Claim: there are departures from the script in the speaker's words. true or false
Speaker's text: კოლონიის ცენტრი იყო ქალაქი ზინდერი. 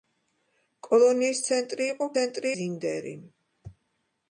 true